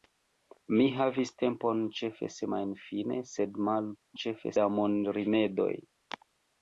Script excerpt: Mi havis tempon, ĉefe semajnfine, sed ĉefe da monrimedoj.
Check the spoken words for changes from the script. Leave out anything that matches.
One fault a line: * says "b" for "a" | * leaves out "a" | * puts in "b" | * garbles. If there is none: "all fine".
all fine